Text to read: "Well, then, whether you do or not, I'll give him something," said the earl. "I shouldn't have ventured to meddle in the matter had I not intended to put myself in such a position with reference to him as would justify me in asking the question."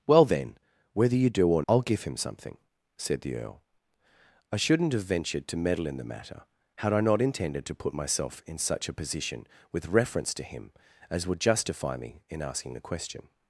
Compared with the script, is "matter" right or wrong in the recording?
right